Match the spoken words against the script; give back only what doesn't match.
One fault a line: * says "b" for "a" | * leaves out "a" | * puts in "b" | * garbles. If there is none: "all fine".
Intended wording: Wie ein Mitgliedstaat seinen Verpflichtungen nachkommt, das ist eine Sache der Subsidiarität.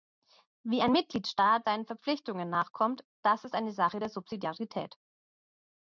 all fine